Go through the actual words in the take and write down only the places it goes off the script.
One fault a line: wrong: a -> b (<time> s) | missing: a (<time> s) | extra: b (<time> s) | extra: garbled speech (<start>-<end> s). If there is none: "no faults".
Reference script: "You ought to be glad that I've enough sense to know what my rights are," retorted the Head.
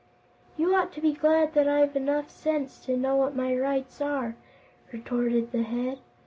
no faults